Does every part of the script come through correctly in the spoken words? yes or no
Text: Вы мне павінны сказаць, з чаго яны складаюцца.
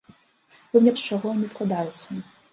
no